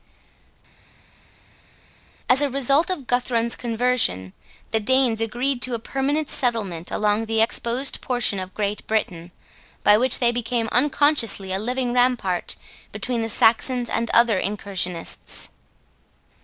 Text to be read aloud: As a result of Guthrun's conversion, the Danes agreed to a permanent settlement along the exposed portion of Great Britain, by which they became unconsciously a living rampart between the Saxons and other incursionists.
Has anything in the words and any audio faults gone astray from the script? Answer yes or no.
no